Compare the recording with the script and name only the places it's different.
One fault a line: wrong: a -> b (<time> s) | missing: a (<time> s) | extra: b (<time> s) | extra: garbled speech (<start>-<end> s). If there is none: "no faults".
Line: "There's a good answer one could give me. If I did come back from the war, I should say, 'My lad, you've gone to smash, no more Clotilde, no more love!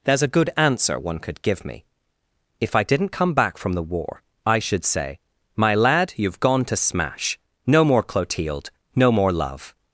wrong: did -> didn't (2.8 s)